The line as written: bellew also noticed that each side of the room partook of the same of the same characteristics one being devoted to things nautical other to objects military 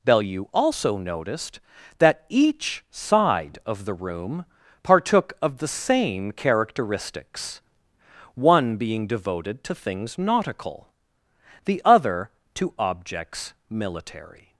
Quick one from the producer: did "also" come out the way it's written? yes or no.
yes